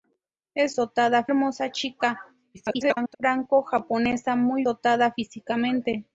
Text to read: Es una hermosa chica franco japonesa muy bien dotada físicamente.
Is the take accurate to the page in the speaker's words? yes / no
no